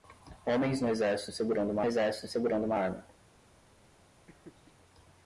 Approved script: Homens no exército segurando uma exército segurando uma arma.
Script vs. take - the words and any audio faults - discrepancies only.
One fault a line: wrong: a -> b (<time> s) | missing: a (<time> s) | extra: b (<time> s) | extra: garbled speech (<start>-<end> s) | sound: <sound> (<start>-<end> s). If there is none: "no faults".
sound: laugh (4.3-4.7 s)